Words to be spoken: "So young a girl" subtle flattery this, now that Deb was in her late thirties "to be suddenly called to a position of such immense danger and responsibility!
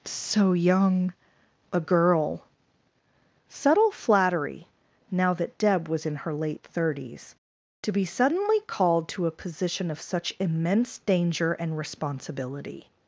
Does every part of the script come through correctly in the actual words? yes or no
no